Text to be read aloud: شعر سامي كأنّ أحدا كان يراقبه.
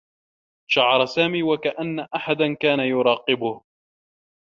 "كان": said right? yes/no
yes